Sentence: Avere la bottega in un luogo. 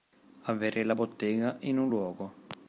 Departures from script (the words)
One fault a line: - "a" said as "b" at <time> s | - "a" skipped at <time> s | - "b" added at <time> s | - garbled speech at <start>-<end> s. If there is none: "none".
none